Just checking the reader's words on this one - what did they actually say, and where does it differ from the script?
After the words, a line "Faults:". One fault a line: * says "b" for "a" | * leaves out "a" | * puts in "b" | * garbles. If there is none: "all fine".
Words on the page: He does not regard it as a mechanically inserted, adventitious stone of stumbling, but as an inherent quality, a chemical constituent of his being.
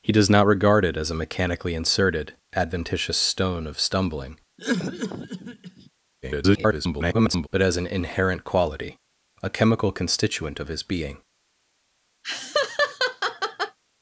He does not regard it as a mechanically inserted, adventitious stone of stumbling, [garbled] but as an inherent quality, a chemical constituent of his being.
Faults:
* garbles